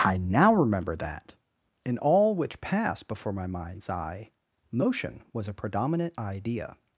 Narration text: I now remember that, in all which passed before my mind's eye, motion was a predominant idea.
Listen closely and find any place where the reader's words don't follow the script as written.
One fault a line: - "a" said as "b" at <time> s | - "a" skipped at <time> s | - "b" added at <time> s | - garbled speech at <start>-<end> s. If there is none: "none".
none